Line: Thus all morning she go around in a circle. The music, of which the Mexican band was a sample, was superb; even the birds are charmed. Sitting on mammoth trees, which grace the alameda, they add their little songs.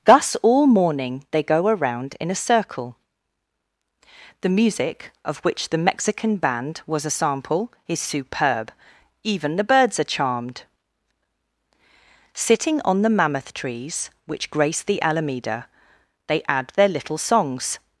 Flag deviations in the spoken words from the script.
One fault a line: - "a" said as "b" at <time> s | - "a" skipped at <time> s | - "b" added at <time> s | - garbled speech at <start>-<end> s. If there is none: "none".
- "she" said as "they" at 1.3 s
- "was" said as "is" at 7.9 s
- "the" added at 13.0 s